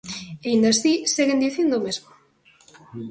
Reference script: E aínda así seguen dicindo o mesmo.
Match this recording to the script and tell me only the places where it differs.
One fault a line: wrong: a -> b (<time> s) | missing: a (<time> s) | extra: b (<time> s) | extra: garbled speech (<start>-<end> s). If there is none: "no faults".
no faults